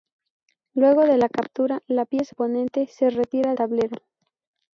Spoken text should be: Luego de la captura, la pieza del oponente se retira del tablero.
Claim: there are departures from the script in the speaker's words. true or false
true